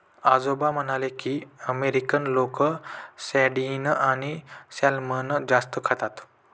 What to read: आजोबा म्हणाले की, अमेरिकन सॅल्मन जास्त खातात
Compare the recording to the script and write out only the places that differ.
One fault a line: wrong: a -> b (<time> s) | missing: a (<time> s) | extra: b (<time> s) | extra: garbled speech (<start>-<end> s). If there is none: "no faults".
extra: लोक सार्डिन आणि (2.3 s)